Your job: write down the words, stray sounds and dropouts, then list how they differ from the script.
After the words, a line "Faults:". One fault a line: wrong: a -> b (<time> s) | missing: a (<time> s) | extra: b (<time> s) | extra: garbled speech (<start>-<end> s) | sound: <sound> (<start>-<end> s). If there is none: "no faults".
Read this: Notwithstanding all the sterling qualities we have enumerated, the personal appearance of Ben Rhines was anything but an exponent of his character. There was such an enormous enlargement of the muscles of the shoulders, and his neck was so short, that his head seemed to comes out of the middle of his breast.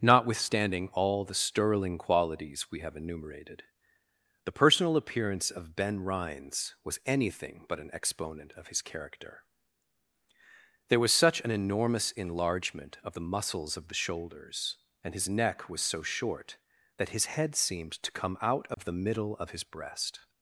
Notwithstanding all the sterling qualities we have enumerated, the personal appearance of Ben Rhines was anything but an exponent of his character. There was such an enormous enlargement of the muscles of the shoulders, and his neck was so short, that his head seemed to come out of the middle of his breast.
Faults:
wrong: comes -> come (18.1 s)
sound: dropout (18.7-18.8 s)